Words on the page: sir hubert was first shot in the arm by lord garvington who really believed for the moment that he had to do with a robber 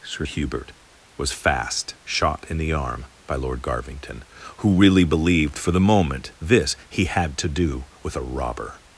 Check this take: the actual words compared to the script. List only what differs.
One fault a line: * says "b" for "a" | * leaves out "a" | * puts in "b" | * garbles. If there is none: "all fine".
* says "fast" for "first"
* says "this" for "that"